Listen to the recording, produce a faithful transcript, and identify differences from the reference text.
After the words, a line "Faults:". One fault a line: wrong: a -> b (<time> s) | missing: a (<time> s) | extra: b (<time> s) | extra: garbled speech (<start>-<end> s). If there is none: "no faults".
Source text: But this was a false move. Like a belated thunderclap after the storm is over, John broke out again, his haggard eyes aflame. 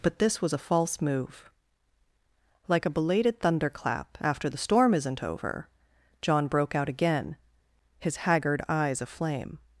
But this was a false move. Like a belated thunderclap after the storm isn't over, John broke out again, his haggard eyes aflame.
Faults:
wrong: is -> isn't (4.9 s)